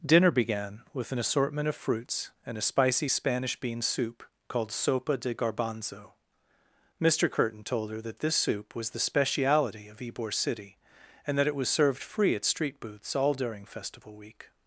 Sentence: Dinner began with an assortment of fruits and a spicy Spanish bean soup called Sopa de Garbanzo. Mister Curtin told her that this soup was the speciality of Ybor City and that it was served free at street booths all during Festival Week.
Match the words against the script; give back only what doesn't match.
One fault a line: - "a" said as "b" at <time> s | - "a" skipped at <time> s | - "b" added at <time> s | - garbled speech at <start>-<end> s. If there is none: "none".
none